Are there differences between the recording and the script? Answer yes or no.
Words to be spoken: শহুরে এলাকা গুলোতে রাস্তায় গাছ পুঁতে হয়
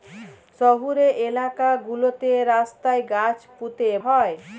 no